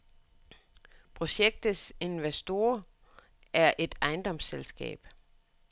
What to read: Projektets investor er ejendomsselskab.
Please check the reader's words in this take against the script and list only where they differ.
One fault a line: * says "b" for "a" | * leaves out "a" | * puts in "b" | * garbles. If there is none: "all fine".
* puts in "et"